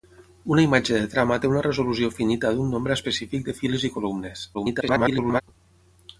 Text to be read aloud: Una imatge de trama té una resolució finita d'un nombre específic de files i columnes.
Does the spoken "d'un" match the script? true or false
true